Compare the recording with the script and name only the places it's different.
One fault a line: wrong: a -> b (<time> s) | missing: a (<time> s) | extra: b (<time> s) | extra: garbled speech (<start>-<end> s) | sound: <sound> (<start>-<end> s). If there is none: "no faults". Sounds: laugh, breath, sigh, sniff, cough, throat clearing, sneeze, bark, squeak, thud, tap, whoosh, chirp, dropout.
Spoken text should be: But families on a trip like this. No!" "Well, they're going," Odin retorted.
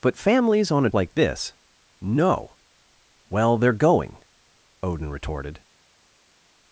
missing: trip (0.9 s)